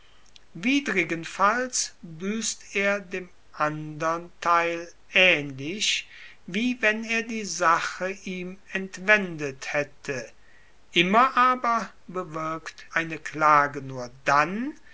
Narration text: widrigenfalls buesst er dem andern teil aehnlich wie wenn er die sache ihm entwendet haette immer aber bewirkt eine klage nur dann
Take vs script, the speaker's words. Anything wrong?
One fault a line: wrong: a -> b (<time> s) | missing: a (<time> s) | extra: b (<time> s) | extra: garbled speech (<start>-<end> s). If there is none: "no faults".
no faults